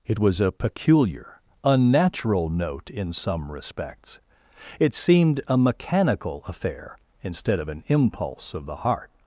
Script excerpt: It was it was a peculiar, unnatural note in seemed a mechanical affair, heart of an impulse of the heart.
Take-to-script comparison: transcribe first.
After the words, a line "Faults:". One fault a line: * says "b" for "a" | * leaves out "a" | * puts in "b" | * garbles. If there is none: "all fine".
It was a peculiar, unnatural note in some respects. It seemed a mechanical affair, instead of an impulse of the heart.
Faults:
* leaves out "it was"
* puts in "some respects It"
* says "instead" for "heart"